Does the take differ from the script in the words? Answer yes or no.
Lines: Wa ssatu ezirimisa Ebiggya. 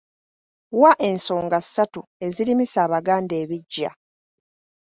yes